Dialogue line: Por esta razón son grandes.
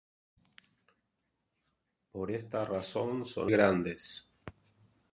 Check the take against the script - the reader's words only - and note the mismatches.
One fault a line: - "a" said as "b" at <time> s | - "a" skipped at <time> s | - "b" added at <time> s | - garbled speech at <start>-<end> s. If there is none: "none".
none